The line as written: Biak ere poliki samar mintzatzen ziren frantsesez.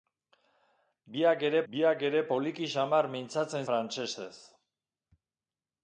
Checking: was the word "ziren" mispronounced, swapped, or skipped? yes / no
yes